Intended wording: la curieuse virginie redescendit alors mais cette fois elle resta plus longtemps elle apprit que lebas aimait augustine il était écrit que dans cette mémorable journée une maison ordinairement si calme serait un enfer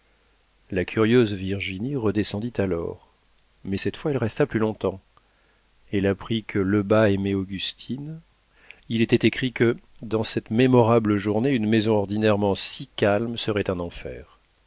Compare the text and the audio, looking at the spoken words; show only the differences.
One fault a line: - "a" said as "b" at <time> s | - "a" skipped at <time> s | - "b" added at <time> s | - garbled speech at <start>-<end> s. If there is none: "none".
none